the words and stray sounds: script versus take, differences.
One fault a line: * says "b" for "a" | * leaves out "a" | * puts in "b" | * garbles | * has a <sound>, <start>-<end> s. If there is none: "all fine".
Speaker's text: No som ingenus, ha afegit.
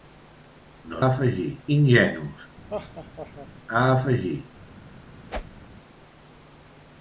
* says "afegit" for "som"
* has a laugh, 2.7-3.5 s
* has a whoosh, 5.3-5.6 s